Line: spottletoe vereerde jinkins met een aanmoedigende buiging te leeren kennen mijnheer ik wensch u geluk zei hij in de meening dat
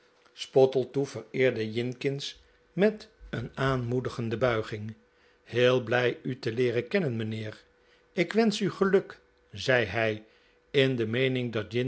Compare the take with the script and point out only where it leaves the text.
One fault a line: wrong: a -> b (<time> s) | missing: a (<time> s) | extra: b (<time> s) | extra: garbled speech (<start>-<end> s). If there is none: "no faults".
extra: heel blij u (5.4 s)